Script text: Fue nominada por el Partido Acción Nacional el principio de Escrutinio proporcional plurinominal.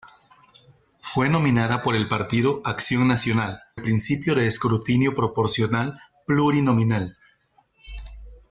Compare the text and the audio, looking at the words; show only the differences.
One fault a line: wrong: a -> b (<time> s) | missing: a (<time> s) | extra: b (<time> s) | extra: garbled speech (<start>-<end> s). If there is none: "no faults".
no faults